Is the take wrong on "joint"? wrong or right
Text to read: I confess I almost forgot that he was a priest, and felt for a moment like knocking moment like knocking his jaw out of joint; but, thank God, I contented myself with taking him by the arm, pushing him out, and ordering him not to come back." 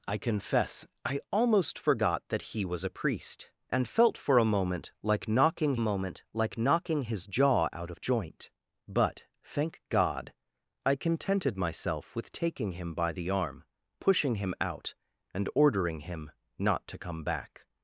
right